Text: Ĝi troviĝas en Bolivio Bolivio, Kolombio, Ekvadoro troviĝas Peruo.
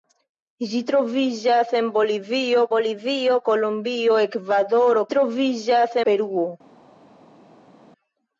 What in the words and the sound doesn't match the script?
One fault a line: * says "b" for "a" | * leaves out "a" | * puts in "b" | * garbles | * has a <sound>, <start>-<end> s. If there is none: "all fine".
all fine